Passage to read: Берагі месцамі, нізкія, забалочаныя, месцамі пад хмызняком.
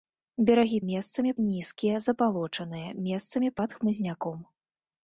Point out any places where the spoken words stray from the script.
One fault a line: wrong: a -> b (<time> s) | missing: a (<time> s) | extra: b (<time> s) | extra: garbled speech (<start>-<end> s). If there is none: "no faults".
no faults